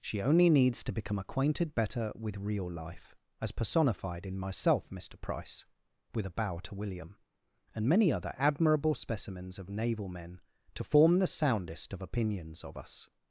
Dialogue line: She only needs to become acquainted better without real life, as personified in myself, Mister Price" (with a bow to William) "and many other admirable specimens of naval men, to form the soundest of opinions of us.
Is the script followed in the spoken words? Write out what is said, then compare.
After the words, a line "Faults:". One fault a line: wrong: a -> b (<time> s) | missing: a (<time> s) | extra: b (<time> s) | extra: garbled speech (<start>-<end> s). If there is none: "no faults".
She only needs to become acquainted better with real life, as personified in myself, Mister Price" (with a bow to William) "and many other admirable specimens of naval men, to form the soundest of opinions of us.
Faults:
wrong: without -> with (2.1 s)